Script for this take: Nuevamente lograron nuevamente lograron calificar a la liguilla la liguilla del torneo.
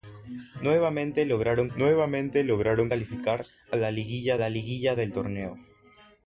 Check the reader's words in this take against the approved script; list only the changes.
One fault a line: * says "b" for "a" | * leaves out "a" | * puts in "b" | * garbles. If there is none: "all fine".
all fine